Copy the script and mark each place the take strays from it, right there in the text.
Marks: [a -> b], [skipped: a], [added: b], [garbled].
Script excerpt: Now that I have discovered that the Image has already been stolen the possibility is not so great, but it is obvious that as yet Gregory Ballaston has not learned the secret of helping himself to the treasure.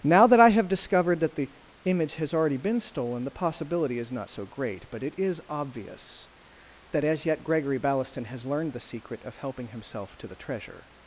Now that I have discovered that the Image has already been stolen the possibility is not so great, but it is obvious that as yet Gregory Ballaston has [skipped: not] learned the secret of helping himself to the treasure.